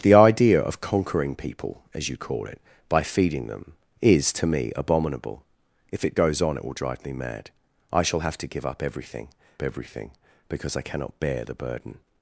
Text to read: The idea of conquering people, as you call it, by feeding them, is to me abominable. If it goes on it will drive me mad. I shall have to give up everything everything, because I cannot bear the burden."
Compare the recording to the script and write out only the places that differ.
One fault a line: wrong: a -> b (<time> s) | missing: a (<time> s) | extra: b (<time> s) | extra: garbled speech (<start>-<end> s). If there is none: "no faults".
no faults